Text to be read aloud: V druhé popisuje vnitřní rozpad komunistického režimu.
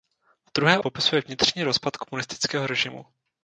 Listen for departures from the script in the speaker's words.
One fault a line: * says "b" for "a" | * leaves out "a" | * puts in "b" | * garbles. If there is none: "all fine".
all fine